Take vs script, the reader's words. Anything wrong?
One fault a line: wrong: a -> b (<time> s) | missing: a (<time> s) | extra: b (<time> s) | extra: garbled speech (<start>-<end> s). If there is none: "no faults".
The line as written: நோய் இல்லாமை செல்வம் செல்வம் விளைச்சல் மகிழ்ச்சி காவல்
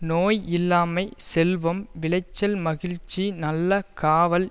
missing: செல்வம் (1.8 s)
extra: நல்ல (3.4 s)